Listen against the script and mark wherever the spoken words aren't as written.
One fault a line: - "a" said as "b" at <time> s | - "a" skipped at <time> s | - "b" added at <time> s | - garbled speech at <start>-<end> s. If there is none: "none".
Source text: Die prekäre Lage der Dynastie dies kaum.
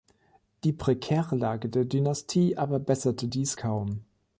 - "aber besserte" added at 2.6 s